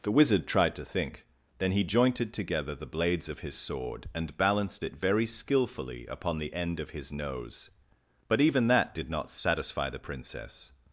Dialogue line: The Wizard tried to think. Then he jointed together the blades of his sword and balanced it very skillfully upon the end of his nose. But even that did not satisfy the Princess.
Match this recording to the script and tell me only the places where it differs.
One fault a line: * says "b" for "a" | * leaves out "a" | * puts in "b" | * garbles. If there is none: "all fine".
all fine